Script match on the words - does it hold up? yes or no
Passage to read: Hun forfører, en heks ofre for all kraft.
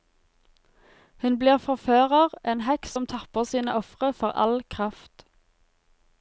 no